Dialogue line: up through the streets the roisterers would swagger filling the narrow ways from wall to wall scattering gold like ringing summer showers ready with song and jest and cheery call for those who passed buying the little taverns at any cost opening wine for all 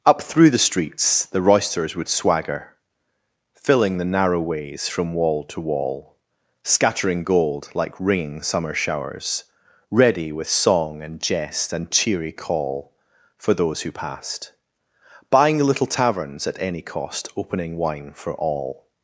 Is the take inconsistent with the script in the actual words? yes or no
no